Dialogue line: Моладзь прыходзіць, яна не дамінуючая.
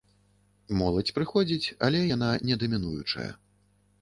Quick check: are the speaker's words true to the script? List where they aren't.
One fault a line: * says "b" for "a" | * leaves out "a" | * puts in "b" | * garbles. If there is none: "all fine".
* puts in "але"